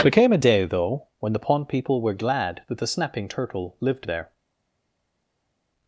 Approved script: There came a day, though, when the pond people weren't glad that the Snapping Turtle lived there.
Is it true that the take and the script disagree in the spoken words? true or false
true